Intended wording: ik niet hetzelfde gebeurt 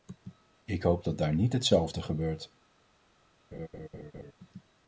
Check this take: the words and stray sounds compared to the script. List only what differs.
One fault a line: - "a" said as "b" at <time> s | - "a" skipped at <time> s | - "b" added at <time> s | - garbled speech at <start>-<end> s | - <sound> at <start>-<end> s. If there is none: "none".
- "hoop dat daar" added at 0.8 s
- laugh at 3.5-4.3 s